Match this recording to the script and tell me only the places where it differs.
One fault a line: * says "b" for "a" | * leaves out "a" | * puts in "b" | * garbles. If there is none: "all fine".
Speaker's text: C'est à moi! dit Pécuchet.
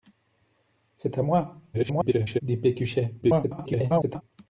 * garbles
* garbles